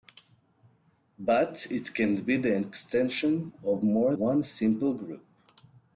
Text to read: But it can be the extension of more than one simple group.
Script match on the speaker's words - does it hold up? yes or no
no